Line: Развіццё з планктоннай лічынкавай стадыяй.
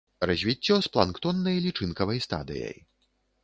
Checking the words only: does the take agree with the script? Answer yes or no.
yes